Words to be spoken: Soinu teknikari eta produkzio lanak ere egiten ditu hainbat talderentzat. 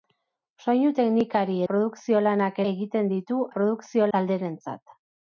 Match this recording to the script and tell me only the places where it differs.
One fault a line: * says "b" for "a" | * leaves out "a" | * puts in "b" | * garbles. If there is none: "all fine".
* leaves out "eta"
* leaves out "ere"
* says "produkzio" for "hainbat"